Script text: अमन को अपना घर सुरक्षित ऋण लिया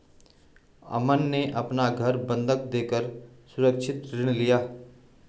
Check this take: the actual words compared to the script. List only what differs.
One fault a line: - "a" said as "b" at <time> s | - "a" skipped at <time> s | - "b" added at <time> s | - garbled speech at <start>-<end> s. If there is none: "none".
- "को" said as "ने" at 1.3 s
- "बंधक देकर" added at 2.3 s